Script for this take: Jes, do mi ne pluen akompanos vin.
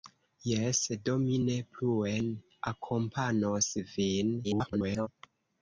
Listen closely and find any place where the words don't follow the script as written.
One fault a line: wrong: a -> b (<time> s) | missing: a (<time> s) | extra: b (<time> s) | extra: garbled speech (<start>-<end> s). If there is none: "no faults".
extra: garbled speech (4.4-5.1 s)